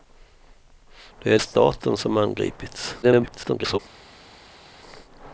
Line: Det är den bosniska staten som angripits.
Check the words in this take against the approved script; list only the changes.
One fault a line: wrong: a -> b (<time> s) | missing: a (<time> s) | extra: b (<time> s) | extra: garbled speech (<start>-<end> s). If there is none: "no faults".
missing: den bosniska (1.4 s)
extra: garbled speech (3.0-3.8 s)